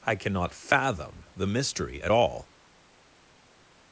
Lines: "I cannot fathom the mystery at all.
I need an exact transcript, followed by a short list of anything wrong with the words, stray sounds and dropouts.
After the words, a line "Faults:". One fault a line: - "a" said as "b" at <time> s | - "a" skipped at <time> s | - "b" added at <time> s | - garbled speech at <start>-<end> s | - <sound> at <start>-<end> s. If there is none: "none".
"I cannot fathom the mystery at all.
Faults:
none